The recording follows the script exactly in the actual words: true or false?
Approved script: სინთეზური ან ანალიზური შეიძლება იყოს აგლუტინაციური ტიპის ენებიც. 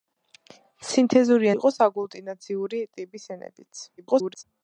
false